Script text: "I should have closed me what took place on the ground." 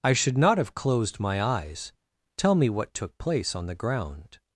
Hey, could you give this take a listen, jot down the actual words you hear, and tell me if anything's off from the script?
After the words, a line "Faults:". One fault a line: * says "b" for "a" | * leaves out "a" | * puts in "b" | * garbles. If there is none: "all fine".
"I should not have closed my eyes. Tell me what took place on the ground."
Faults:
* puts in "not"
* puts in "my eyes Tell"